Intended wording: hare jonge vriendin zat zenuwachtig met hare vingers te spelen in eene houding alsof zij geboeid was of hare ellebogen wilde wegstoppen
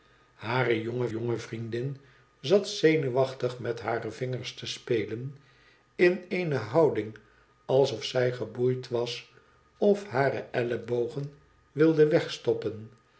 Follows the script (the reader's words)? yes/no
no